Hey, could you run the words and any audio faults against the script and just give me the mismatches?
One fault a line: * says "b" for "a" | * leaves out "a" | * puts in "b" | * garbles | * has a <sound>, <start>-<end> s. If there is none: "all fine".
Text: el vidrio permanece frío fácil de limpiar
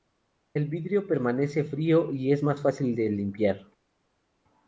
* puts in "y es más"